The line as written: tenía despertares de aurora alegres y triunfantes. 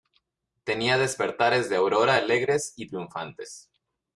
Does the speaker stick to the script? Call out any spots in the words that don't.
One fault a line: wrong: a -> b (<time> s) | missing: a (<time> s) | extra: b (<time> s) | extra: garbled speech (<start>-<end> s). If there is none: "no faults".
no faults